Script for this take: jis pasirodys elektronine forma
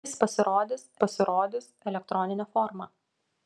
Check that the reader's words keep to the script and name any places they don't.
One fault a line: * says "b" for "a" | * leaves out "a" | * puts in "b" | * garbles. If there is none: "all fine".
* puts in "pasirodys"